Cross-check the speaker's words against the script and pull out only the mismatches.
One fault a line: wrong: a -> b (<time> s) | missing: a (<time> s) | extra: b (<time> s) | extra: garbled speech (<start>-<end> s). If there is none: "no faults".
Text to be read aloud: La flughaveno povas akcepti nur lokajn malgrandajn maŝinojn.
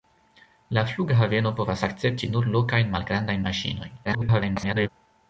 extra: garbled speech (4.0-4.9 s)